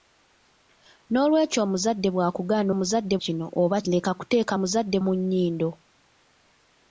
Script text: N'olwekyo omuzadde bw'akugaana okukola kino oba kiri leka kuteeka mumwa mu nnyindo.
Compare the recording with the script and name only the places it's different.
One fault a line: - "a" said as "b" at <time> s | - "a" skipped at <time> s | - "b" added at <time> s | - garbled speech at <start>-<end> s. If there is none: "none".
- "okukola" said as "omuzadde" at 2.7 s
- "kiri" skipped at 3.8 s
- "mumwa" said as "omuzadde" at 4.5 s